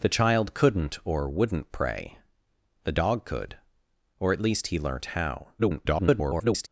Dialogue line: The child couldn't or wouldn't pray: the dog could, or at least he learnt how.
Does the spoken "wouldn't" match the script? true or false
true